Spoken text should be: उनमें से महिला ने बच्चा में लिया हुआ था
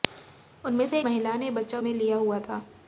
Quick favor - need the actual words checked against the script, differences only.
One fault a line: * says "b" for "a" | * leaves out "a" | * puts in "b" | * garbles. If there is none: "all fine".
all fine